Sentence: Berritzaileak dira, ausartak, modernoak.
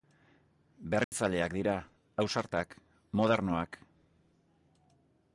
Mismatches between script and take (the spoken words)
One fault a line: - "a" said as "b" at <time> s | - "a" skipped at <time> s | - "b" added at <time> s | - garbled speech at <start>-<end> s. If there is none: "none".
none